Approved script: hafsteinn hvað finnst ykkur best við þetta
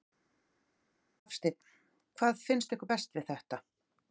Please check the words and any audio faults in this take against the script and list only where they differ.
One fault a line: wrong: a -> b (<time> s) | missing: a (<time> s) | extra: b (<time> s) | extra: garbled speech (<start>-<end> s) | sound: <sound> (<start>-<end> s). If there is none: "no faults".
no faults